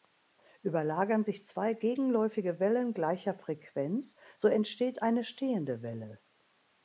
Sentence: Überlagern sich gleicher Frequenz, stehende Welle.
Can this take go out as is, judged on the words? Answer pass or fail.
fail